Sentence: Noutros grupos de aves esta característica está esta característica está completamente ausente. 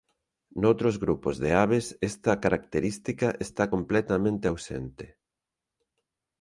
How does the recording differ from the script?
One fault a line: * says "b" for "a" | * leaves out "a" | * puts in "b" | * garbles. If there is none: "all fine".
* leaves out "esta característica está"